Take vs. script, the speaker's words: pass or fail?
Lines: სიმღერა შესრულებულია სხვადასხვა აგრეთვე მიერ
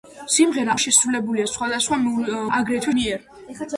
pass